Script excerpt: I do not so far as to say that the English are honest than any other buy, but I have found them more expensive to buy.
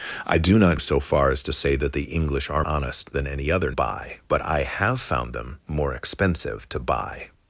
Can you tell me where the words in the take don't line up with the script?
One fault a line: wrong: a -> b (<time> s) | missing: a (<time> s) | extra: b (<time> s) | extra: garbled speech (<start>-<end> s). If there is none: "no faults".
no faults